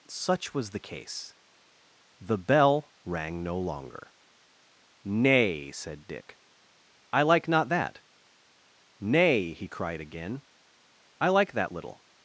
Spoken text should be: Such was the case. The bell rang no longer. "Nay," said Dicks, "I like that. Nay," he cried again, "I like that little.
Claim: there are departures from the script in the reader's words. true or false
true